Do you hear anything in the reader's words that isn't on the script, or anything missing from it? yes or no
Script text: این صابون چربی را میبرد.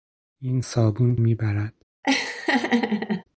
yes